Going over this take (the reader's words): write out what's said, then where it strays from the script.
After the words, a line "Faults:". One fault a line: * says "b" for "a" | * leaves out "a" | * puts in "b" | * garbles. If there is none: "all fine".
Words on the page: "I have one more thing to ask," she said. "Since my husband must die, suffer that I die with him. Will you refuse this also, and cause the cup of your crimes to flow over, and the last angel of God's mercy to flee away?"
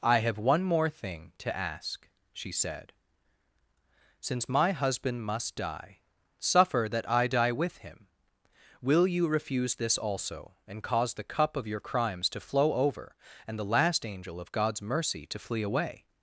"I have one more thing to ask," she said. "Since my husband must die, suffer that I die with him. Will you refuse this also, and cause the cup of your crimes to flow over, and the last angel of God's mercy to flee away?"
Faults:
all fine